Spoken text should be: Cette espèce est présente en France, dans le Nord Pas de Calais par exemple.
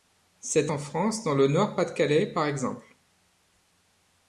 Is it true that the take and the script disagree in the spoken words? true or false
true